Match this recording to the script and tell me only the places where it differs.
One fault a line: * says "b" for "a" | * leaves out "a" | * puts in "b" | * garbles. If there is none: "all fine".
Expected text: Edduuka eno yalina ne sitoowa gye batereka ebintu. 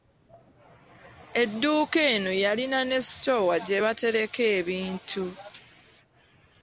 all fine